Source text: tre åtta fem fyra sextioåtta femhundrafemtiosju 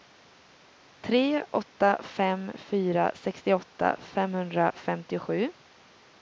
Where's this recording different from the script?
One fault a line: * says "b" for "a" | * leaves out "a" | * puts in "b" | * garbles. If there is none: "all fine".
all fine